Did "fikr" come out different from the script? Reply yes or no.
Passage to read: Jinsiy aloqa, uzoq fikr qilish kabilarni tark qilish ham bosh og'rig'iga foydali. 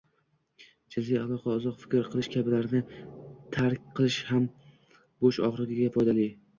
no